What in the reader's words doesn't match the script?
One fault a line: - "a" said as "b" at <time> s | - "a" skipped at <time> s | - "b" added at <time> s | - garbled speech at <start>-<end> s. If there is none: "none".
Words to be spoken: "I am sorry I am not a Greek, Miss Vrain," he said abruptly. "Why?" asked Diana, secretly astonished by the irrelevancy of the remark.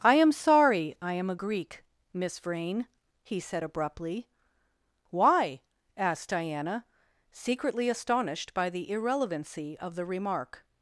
- "not" skipped at 1.3 s